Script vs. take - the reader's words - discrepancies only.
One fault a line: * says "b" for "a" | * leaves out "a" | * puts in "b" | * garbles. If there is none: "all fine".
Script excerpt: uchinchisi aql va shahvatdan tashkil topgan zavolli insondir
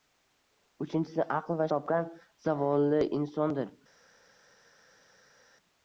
* leaves out "shahvatdan tashkil"